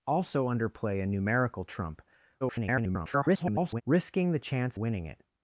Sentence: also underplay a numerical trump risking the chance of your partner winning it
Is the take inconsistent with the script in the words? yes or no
yes